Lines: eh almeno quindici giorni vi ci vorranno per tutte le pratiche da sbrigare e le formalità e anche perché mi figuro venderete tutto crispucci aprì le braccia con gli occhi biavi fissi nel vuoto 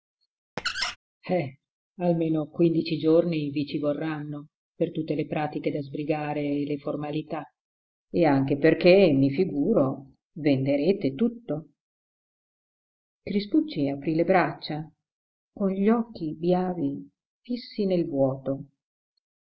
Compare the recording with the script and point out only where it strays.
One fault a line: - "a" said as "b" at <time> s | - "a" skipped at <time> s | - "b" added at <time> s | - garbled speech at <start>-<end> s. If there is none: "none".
none